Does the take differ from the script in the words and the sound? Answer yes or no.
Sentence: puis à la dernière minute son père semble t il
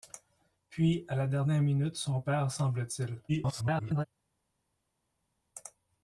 yes